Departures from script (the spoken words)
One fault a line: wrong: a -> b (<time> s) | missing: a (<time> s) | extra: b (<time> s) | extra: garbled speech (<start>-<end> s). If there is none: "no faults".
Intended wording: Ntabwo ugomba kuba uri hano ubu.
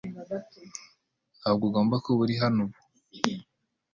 no faults